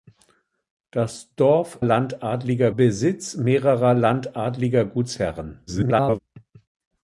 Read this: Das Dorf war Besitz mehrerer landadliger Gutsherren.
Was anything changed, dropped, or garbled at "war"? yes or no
yes